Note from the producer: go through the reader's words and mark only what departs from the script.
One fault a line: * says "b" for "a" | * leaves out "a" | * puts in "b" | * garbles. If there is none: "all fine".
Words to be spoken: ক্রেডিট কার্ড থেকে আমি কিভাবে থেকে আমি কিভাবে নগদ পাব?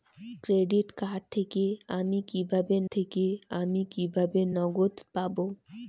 all fine